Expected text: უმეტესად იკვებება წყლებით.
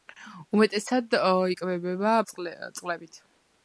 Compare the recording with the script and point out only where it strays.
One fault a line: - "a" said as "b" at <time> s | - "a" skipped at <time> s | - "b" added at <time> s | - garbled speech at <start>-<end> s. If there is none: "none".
none